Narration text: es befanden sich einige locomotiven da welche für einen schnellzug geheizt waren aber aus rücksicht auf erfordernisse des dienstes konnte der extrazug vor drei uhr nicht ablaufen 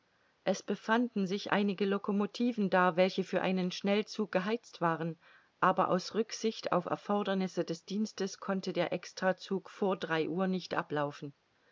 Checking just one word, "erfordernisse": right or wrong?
right